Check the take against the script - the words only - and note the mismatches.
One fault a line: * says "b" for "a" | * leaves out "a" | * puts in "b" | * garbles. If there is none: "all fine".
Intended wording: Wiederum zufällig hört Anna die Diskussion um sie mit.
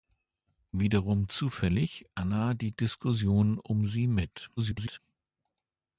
* leaves out "hört"
* garbles